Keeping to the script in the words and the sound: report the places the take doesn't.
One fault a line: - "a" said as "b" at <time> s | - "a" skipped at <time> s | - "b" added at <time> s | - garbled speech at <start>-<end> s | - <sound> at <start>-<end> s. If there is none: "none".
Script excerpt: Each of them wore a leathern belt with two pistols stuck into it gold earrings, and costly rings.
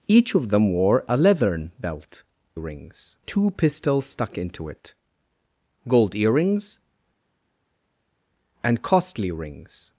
- "with" said as "rings" at 2.5 s